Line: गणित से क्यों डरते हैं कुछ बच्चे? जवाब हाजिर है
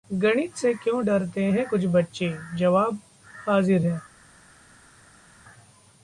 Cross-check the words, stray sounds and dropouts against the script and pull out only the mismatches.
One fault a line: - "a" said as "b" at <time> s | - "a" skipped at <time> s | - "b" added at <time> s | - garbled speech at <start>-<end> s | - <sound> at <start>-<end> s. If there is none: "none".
none